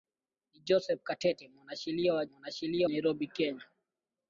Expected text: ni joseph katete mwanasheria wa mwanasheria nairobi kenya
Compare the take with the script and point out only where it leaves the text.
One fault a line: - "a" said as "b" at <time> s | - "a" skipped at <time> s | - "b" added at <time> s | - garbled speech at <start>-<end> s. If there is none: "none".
none